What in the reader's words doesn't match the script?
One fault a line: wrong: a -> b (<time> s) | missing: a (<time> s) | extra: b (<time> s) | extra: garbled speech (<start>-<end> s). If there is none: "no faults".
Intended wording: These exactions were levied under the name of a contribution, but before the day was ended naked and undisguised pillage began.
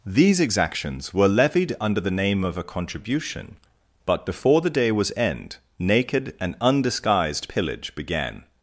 wrong: ended -> end (5.2 s)